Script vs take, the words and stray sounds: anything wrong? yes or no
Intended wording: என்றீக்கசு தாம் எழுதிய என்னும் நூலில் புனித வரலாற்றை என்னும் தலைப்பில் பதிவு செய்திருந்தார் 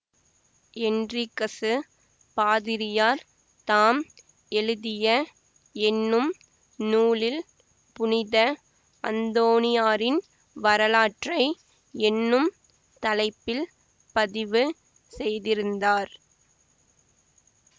yes